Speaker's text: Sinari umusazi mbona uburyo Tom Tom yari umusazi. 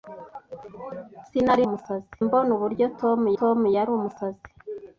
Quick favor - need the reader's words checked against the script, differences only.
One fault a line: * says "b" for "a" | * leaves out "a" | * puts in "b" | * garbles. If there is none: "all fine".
all fine